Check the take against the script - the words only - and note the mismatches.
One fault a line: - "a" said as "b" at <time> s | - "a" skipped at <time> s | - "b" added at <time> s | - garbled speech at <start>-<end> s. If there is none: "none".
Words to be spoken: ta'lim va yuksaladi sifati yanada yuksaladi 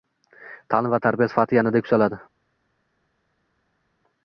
- "yuksaladi" said as "tarbiya" at 1.1 s